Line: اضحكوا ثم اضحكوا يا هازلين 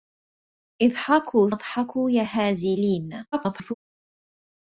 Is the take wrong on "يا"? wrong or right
right